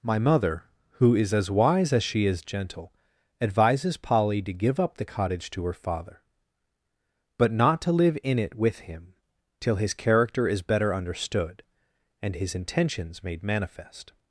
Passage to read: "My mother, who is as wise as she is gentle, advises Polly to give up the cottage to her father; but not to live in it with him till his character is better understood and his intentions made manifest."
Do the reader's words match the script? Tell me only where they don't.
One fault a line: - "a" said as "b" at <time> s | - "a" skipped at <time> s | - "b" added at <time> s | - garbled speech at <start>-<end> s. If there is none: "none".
none